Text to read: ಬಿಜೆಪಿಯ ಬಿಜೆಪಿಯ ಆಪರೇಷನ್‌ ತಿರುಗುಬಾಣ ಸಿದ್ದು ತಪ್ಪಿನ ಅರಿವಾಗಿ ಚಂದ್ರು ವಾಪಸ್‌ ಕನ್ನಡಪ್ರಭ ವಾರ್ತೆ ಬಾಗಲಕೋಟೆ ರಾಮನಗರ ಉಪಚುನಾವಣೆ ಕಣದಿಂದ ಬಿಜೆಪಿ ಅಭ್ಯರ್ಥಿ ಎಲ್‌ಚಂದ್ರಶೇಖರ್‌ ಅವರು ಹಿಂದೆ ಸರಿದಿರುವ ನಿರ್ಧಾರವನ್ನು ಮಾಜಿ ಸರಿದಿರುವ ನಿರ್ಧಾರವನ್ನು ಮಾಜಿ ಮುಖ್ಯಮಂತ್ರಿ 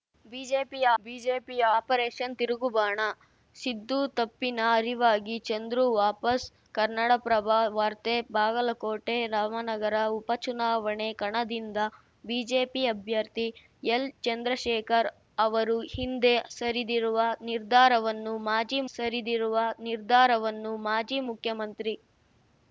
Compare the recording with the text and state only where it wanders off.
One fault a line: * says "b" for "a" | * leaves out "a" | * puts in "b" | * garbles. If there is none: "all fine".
all fine